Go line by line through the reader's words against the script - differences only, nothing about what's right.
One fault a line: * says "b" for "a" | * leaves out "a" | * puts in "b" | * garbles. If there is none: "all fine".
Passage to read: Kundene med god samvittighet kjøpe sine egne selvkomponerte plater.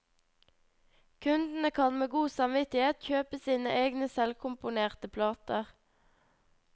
* puts in "kan"